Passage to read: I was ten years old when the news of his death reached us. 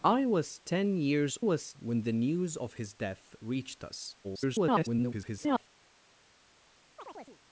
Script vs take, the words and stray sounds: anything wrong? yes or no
yes